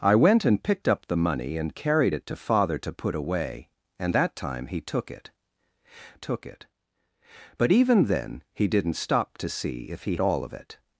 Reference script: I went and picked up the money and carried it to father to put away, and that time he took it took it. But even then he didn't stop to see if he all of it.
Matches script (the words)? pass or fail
pass